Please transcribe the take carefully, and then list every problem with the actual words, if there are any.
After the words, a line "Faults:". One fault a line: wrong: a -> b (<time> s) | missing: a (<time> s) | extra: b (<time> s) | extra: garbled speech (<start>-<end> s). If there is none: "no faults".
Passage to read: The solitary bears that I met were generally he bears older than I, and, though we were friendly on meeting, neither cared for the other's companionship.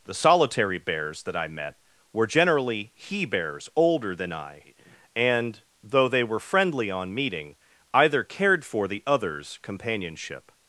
The solitary bears that I met were generally he bears older than I, and, though they were friendly on meeting, either cared for the other's companionship.
Faults:
wrong: we -> they (6.1 s)
wrong: neither -> either (7.9 s)